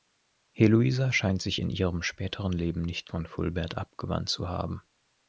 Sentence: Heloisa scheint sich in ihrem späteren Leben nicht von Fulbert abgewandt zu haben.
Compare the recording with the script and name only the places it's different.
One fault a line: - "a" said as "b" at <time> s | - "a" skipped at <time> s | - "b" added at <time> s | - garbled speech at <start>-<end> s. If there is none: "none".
none